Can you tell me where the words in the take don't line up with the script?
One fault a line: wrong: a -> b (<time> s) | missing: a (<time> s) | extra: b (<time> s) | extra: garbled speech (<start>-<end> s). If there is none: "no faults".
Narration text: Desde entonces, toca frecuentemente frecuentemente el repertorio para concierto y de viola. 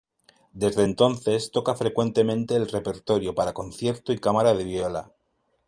missing: frecuentemente (2.5 s)
extra: cámara (4.2 s)